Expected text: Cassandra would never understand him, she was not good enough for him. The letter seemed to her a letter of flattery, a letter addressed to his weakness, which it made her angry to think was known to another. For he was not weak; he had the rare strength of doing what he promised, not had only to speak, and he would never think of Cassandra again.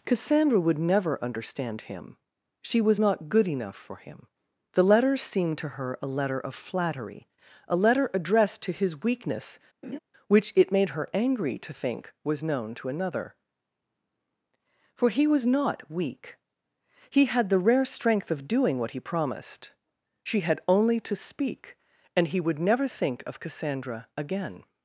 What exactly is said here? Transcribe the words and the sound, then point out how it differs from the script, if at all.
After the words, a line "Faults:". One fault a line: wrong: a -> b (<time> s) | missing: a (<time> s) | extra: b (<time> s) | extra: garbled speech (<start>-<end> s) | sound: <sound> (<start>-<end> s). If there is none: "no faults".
Cassandra would never understand him, she was not good enough for him. The letter seemed to her a letter of flattery, a letter addressed to his weakness, which it made her angry to think was known to another. For he was not weak; he had the rare strength of doing what he promised, she had only to speak, and he would never think of Cassandra again.
Faults:
sound: laugh (9.8-10.0 s)
wrong: not -> she (20.2 s)